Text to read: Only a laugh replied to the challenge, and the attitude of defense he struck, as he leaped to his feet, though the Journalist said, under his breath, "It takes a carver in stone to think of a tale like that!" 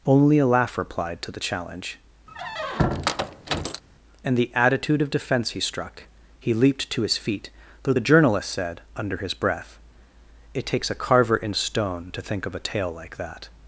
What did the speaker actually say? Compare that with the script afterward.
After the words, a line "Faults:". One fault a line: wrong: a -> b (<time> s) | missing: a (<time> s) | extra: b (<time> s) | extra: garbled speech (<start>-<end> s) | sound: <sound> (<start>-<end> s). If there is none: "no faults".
Only a laugh replied to the challenge, and the attitude of defense he struck, he leaped to his feet, though the Journalist said, under his breath, "It takes a carver in stone to think of a tale like that!"
Faults:
sound: squeak (2.3-3.8 s)
missing: as (6.0 s)